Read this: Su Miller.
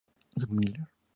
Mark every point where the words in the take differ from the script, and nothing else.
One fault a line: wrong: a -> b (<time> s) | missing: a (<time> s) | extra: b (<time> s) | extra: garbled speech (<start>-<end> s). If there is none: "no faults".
no faults